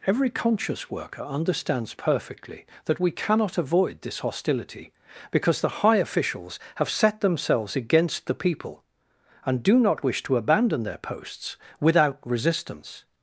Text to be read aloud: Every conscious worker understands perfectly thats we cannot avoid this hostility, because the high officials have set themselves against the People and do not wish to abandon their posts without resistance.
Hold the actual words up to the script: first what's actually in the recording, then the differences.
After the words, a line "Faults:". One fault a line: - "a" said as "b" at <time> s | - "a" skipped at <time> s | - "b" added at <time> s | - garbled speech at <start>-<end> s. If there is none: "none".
Every conscious worker understands perfectly that we cannot avoid this hostility, because the high officials have set themselves against the People and do not wish to abandon their posts without resistance.
Faults:
- "thats" said as "that" at 2.8 s